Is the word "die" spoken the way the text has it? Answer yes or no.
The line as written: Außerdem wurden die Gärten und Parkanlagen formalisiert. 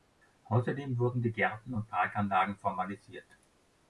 yes